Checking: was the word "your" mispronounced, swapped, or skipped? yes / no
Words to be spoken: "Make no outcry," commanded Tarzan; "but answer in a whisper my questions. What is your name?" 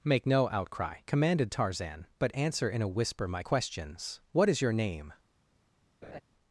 no